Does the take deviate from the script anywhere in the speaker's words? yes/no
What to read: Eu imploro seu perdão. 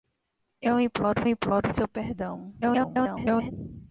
yes